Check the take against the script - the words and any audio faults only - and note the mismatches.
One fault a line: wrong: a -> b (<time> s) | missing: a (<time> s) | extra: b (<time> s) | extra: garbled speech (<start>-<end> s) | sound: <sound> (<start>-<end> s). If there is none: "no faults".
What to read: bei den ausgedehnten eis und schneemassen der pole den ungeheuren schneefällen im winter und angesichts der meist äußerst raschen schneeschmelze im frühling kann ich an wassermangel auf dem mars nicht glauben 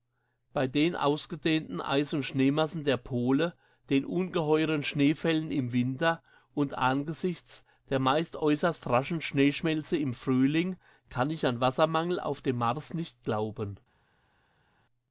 no faults